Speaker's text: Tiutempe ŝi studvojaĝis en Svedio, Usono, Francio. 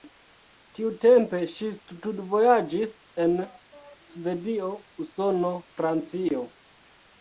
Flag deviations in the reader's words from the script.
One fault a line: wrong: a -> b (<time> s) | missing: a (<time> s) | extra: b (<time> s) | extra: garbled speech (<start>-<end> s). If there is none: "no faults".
no faults